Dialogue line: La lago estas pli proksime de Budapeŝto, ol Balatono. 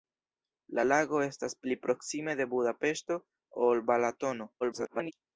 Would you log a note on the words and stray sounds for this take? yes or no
yes